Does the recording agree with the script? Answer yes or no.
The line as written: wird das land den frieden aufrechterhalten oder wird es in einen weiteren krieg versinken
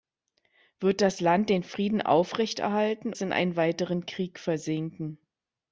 no